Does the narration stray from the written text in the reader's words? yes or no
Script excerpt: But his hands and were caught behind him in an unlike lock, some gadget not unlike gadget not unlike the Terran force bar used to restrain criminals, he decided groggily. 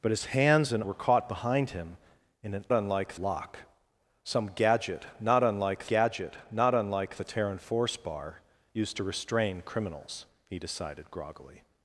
no